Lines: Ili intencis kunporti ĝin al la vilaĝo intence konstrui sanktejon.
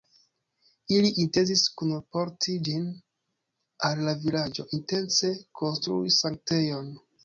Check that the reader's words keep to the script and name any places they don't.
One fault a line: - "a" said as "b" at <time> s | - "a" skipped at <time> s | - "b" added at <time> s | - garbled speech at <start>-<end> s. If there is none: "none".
none